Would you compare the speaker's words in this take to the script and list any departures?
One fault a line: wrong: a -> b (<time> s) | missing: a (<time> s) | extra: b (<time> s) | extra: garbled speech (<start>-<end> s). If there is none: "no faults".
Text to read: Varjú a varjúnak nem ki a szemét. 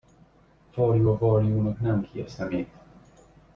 no faults